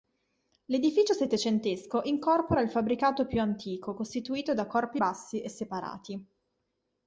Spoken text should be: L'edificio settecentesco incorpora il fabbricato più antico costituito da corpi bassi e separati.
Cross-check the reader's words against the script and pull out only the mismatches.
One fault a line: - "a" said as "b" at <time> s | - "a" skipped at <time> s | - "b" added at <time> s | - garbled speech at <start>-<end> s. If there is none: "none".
none